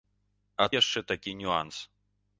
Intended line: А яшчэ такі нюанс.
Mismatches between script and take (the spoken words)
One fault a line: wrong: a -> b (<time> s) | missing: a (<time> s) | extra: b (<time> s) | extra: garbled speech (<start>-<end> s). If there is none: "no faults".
no faults